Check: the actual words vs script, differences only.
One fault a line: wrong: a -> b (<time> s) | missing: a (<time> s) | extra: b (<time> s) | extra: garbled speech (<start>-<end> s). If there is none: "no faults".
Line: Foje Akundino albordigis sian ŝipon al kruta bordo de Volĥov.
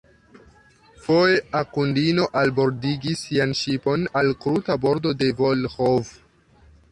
no faults